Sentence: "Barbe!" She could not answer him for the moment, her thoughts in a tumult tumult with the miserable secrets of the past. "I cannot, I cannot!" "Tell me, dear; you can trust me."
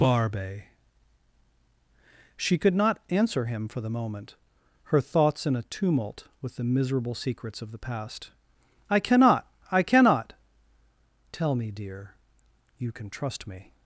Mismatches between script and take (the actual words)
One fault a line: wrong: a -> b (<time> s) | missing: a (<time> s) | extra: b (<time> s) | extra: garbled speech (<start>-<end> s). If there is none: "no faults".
missing: tumult (6.3 s)